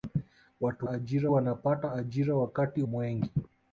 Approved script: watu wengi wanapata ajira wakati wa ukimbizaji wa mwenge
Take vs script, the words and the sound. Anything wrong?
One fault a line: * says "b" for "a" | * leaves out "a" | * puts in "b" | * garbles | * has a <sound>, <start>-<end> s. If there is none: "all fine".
* says "ajira" for "wengi"
* leaves out "wa ukimbizaji wa"